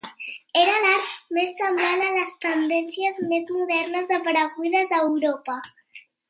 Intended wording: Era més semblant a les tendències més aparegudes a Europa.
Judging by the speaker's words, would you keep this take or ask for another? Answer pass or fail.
fail